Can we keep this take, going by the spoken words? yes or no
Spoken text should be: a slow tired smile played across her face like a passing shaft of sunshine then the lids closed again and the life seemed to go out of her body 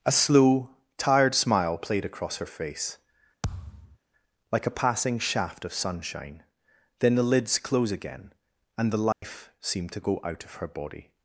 no